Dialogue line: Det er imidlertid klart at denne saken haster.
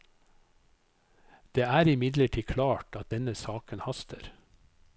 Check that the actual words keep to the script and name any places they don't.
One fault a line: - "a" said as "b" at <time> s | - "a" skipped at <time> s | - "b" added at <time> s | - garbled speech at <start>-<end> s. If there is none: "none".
none